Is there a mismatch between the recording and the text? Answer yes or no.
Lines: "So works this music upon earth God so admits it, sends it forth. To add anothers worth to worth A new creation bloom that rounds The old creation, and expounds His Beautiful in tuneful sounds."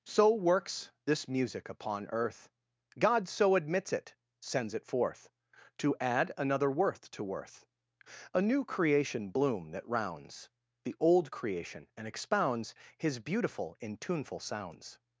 yes